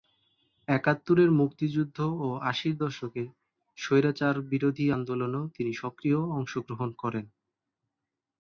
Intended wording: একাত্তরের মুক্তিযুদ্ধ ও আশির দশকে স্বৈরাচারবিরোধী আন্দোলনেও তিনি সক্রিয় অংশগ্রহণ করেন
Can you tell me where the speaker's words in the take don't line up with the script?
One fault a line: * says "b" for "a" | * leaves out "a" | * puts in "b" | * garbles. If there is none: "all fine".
all fine